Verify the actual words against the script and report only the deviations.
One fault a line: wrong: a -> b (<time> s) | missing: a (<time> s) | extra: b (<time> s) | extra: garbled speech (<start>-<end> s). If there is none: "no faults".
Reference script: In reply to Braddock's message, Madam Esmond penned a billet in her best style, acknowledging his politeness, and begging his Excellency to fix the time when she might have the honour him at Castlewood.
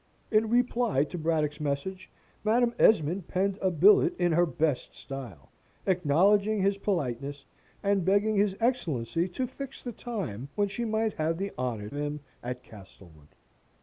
no faults